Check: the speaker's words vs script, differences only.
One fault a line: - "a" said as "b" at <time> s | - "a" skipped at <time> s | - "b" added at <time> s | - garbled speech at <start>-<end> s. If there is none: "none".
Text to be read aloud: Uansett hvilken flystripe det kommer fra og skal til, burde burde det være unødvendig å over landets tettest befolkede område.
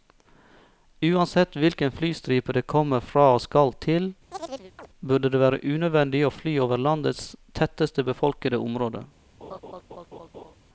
- "burde" skipped at 5.3 s
- "fly" added at 6.3 s